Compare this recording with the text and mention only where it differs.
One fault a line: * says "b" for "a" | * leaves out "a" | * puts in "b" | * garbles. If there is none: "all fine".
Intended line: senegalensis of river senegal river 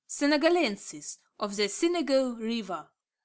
* says "the" for "river"